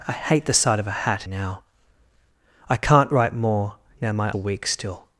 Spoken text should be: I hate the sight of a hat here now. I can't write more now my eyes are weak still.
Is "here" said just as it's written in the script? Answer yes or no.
no